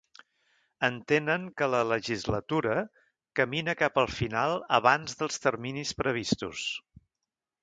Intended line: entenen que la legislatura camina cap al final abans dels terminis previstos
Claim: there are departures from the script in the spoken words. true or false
false